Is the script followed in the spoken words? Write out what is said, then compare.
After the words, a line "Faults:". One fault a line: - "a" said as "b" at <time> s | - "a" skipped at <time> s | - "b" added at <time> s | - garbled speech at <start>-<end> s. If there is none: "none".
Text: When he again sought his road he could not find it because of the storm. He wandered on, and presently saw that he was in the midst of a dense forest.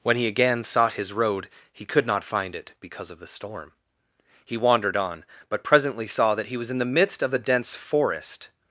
When he again sought his road he could not find it because of the storm. He wandered on, but presently saw that he was in the midst of a dense forest.
Faults:
- "and" said as "but" at 5.5 s